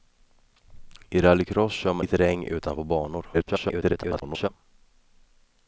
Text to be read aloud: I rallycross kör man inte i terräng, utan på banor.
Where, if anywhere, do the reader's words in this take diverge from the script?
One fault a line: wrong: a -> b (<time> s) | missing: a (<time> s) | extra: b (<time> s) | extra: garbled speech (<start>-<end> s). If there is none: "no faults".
missing: inte (2.0 s)
extra: garbled speech (3.3-4.5 s)